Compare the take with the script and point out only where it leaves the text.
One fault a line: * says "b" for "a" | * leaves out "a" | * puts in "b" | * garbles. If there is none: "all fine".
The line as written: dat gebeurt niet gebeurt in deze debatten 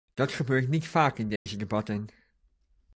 * says "vaak" for "gebeurt"